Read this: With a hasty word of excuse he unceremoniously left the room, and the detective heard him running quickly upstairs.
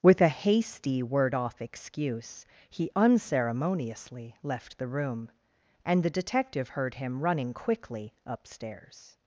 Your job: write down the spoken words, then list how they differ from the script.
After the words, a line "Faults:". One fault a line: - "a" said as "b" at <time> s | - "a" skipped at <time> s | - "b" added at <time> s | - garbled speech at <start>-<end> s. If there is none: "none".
With a hasty word off excuse he unceremoniously left the room, and the detective heard him running quickly upstairs.
Faults:
- "of" said as "off" at 1.4 s